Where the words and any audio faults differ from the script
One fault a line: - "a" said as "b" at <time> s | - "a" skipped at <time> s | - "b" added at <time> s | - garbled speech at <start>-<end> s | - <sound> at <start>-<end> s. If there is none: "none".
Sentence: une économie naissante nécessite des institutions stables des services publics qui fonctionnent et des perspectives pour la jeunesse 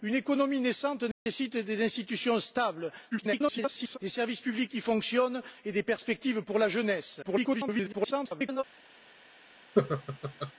- dropout at 1.1-1.3 s
- garbled speech at 3.1-4.0 s
- garbled speech at 7.2-8.6 s
- laugh at 9.8-10.5 s